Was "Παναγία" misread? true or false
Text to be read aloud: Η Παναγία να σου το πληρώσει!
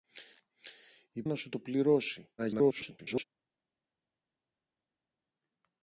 true